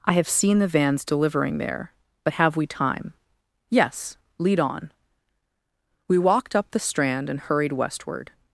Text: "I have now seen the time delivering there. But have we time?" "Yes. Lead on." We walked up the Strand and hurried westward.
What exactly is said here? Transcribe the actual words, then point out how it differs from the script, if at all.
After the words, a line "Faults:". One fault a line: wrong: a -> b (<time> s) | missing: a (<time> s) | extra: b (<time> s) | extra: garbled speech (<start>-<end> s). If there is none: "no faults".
"I have seen the vans delivering there. But have we time?" "Yes. Lead on." We walked up the Strand and hurried westward.
Faults:
missing: now (0.3 s)
wrong: time -> vans (0.7 s)